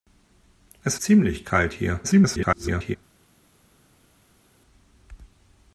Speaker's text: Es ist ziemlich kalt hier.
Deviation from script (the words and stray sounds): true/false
true